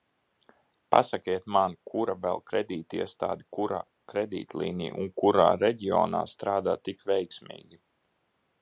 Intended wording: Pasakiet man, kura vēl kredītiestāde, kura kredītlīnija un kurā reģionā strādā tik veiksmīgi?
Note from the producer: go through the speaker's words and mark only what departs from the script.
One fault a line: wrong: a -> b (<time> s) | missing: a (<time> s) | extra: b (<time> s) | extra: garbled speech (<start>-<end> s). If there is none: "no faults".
no faults